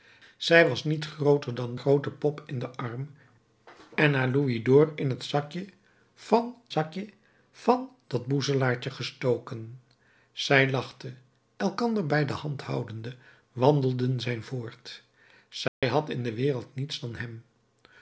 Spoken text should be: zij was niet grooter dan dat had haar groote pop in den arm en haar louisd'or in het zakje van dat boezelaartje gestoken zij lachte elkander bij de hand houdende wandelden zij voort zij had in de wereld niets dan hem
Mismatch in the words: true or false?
true